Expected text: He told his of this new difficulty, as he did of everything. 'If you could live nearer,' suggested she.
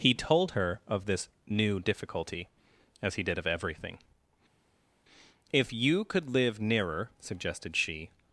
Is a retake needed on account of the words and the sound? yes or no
yes